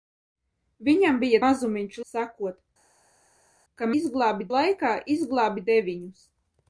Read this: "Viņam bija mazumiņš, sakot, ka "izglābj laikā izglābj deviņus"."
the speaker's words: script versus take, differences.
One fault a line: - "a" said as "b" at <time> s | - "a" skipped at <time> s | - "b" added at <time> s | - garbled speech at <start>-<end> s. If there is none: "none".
none